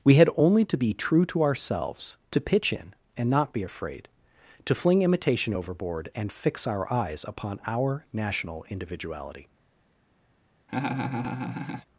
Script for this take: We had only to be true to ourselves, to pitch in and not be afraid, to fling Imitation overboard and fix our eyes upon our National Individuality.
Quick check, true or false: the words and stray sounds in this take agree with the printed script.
false